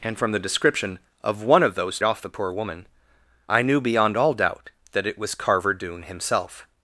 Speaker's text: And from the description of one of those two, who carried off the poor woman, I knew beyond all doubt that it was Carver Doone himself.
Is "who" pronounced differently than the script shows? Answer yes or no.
yes